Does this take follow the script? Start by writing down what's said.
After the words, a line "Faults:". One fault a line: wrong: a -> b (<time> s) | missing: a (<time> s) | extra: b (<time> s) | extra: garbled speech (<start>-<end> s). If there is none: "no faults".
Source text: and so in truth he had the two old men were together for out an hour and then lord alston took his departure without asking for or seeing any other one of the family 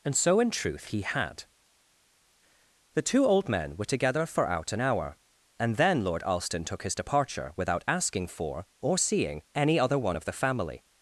and so in truth he had the two old men were together for out an hour and then lord alston took his departure without asking for or seeing any other one of the family
Faults:
no faults